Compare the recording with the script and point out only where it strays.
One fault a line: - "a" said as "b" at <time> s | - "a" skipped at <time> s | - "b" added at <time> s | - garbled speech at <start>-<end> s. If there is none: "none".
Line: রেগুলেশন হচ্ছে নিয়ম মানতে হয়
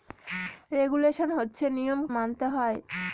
none